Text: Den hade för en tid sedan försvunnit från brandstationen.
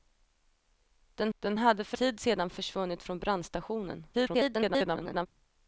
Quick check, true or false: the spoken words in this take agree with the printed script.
false